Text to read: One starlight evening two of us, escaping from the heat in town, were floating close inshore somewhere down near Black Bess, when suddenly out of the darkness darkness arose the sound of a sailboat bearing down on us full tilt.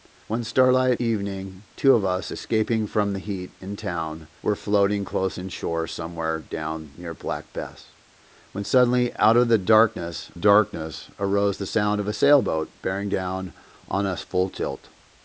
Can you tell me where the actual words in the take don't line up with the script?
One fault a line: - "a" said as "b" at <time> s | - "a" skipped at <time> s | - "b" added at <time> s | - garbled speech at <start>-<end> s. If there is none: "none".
none